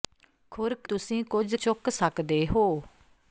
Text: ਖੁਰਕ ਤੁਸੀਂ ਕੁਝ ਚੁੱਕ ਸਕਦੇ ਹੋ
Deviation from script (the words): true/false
false